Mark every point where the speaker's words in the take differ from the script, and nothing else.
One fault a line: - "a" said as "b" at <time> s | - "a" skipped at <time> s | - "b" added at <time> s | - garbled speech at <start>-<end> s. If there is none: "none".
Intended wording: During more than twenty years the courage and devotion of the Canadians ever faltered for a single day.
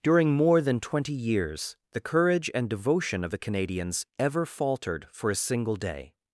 none